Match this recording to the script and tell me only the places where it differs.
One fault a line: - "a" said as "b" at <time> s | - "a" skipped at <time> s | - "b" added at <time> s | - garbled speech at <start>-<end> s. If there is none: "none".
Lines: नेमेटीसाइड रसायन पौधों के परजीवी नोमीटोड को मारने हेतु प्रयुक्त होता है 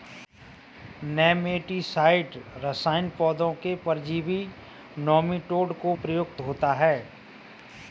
- "मारने हेतु" skipped at 6.0 s